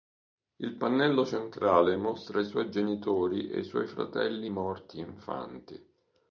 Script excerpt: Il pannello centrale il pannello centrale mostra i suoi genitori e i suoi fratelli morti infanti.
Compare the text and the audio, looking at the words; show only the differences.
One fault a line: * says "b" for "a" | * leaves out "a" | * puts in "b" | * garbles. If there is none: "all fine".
* leaves out "il pannello centrale"